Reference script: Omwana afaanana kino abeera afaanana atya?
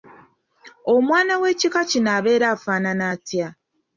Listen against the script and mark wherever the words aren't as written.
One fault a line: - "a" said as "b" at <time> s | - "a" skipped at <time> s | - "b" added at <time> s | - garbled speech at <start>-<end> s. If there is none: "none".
- "afaanana" said as "w'ekika" at 1.4 s